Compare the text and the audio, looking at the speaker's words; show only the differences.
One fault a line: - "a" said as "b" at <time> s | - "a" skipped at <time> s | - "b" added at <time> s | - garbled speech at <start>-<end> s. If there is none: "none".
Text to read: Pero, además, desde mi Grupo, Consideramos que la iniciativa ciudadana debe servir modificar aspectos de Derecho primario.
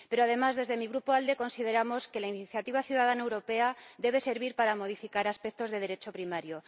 - "ALDE" added at 1.1 s
- "europea" added at 3.2 s
- "para" added at 4.6 s